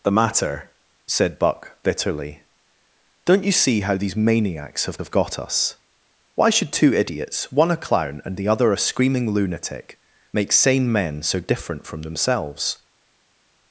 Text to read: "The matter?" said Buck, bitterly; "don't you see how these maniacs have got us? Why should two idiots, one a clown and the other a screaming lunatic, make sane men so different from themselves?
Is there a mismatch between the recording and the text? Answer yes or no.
yes